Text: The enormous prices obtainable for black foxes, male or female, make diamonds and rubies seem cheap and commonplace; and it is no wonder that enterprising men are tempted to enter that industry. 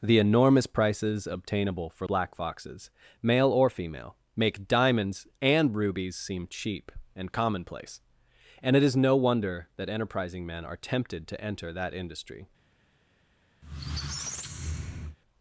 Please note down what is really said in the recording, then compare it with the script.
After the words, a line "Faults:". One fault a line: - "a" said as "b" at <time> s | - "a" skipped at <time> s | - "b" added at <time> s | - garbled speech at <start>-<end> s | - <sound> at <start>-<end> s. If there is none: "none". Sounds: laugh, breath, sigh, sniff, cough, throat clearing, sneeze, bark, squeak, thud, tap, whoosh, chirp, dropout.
The enormous prices obtainable for black foxes, male or female, make diamonds and rubies seem cheap and commonplace; and it is no wonder that enterprising men are tempted to enter that industry.
Faults:
- squeak at 13.6-15.2 s